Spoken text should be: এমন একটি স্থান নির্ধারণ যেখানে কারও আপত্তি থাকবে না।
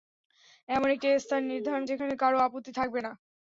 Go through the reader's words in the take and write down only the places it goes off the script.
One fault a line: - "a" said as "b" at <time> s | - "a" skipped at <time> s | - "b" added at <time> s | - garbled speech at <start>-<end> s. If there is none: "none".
none